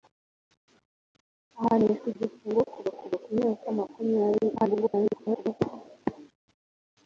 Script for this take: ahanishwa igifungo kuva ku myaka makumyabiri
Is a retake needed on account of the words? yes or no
yes